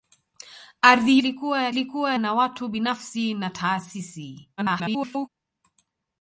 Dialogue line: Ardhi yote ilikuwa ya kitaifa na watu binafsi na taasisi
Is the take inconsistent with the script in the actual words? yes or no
yes